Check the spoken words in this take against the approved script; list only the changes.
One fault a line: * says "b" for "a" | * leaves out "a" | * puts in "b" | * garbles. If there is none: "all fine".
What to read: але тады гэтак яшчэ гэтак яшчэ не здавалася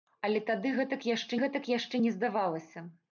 all fine